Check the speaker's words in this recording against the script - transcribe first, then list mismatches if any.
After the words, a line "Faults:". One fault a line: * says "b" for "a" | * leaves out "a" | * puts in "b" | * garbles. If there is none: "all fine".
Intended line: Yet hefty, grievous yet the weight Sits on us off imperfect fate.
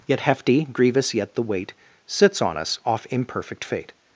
Yet hefty, grievous yet the weight Sits on us off imperfect fate.
Faults:
all fine